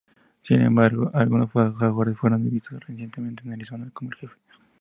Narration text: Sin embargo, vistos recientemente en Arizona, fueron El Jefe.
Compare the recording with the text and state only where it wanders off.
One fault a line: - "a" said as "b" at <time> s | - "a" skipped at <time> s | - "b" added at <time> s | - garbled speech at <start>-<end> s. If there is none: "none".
- "algunos jaguares fueron" added at 1.1 s
- "fueron" said as "como" at 3.9 s